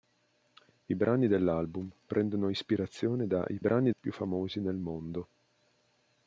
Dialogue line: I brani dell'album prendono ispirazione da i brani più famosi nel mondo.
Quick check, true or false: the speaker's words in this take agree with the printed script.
true